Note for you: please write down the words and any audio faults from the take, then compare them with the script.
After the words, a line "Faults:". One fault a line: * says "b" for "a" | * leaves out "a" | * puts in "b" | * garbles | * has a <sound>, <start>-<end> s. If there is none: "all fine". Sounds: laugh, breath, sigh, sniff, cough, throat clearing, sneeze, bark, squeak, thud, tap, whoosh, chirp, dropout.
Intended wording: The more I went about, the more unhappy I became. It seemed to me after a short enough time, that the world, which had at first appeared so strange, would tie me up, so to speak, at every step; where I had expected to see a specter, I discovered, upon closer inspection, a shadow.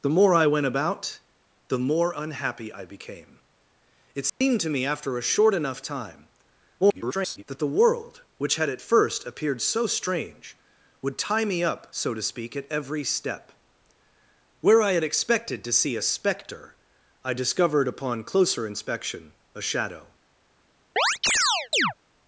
The more I went about, the more unhappy I became. It seemed to me after a short enough time, [garbled] that the world, which had at first appeared so strange, would tie me up, so to speak, at every step; where I had expected to see a specter, I discovered, upon closer inspection, a shadow.
Faults:
* has a dropout, 4.3-4.4 s
* garbles
* has a chirp, 21.0-21.9 s